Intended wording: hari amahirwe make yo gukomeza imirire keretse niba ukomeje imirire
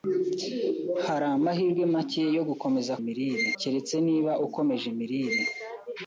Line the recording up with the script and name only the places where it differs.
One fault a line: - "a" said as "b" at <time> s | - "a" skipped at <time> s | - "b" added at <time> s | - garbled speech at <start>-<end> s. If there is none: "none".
none